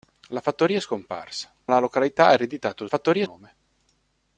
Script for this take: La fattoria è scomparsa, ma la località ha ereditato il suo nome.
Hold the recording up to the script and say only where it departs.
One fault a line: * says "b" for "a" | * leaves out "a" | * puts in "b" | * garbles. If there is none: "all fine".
* leaves out "ma"
* says "fattoria" for "suo"